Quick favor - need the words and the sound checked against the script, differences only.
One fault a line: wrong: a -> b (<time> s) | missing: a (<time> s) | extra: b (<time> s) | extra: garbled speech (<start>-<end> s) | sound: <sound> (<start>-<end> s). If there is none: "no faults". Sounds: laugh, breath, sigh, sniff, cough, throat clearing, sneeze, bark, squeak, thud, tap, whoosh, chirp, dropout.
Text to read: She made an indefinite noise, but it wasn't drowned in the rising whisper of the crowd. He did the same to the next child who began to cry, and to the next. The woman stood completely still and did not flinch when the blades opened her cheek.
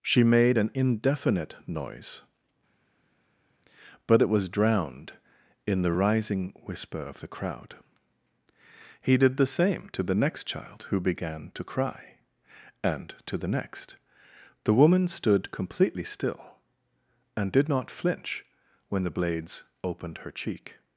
wrong: wasn't -> was (4.3 s)